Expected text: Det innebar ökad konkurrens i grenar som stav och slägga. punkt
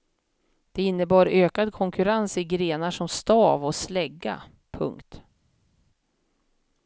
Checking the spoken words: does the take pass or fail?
pass